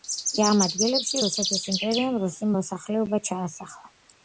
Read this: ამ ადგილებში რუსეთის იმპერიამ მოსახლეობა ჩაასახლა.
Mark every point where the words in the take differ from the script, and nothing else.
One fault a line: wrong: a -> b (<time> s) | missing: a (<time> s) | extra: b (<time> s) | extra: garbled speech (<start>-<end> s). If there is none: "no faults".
extra: რუსი (2.3 s)